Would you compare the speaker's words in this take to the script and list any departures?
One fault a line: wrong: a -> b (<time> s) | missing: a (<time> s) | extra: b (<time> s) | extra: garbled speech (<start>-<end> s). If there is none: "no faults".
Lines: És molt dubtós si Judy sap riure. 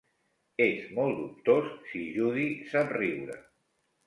no faults